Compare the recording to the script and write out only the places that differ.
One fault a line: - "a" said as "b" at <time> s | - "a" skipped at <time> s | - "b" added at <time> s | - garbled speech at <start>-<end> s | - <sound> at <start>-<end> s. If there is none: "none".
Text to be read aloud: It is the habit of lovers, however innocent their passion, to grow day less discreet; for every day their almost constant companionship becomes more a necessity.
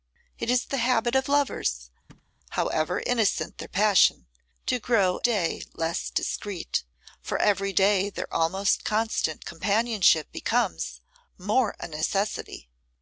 - thud at 2.1-2.3 s